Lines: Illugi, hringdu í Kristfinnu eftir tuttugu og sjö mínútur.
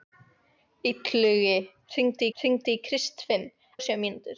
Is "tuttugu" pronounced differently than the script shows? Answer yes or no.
yes